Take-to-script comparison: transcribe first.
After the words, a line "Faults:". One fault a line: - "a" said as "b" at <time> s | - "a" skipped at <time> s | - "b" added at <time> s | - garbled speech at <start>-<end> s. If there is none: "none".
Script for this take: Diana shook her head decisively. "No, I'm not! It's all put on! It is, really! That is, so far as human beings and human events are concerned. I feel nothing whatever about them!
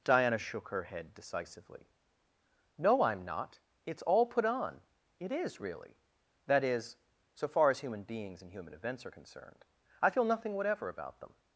Diana shook her head decisively. "No, I'm not! It's all put on! It is, really! That is, so far as human beings and human events are concerned. I feel nothing whatever about them!
Faults:
none